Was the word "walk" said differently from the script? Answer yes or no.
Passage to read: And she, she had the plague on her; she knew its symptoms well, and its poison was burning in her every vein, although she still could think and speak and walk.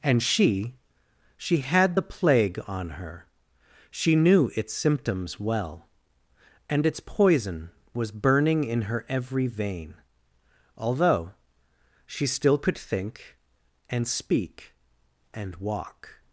no